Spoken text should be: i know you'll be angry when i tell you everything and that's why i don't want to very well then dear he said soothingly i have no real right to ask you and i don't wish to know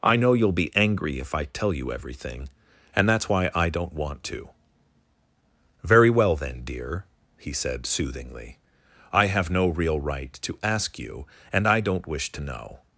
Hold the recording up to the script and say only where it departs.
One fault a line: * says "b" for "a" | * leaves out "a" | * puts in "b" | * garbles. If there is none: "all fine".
* says "if" for "when"